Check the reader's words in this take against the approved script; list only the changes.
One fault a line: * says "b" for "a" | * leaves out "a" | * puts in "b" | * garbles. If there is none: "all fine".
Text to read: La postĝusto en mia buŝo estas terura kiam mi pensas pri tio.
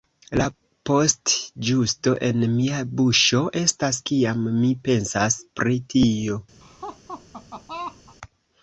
* leaves out "terura"